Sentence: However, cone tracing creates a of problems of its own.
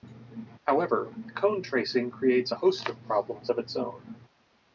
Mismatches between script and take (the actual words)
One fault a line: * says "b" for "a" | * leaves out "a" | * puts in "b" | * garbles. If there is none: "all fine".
* puts in "host"